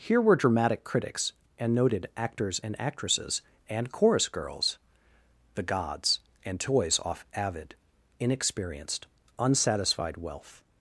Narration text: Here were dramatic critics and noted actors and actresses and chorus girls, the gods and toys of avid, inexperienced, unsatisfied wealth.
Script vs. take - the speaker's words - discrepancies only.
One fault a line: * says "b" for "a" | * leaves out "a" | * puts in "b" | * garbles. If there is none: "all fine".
* says "off" for "of"